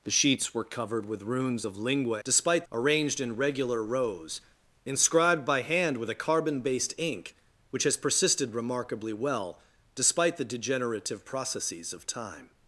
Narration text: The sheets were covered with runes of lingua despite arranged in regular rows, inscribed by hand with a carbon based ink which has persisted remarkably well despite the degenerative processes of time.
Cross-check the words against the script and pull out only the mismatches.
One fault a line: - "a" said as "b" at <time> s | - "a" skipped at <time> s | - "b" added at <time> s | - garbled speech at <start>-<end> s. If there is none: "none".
none